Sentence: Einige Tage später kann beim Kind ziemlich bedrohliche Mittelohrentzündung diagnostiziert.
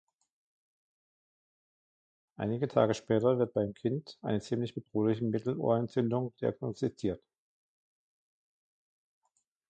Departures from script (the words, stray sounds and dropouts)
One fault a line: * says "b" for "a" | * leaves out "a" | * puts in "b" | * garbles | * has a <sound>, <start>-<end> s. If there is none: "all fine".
* says "wird" for "kann"
* puts in "eine"